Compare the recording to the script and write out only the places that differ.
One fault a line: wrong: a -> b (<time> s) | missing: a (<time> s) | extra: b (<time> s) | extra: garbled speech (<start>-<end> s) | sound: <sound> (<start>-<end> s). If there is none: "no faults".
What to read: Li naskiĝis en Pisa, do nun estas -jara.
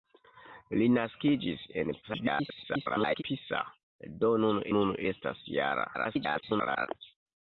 extra: garbled speech (2.0-3.2 s)
extra: nun (4.8 s)
extra: garbled speech (5.9-6.9 s)